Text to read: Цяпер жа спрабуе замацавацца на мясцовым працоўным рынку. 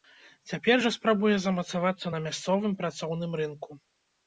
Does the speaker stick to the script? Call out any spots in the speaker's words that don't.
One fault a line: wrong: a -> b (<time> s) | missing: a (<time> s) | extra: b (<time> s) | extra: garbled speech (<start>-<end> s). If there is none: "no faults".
no faults